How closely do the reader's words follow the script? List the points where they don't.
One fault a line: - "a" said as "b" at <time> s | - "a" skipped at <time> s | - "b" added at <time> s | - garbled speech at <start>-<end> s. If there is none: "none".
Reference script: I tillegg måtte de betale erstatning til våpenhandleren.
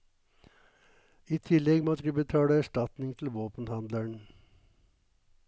none